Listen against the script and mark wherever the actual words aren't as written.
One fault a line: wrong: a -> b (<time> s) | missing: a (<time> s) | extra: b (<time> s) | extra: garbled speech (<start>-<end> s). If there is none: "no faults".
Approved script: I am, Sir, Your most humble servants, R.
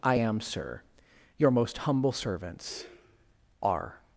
no faults